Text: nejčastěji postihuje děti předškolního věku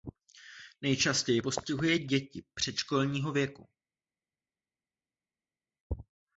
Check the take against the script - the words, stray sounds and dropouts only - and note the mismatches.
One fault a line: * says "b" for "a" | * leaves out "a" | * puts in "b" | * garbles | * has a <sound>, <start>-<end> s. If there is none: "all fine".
all fine